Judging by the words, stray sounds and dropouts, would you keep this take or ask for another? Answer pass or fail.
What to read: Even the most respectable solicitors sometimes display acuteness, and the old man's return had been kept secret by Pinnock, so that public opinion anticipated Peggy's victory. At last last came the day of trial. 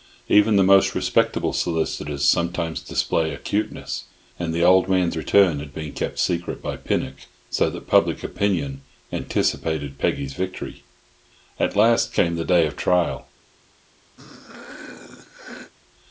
fail